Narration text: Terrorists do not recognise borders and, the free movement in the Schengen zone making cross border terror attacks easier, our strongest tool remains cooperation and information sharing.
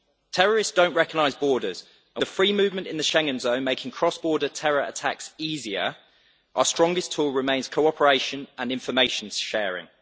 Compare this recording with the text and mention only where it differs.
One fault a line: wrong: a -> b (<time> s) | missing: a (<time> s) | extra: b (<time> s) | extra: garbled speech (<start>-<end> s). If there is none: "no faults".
no faults